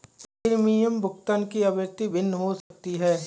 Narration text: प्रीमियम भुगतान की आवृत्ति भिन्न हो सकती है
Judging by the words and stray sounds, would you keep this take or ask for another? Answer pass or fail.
fail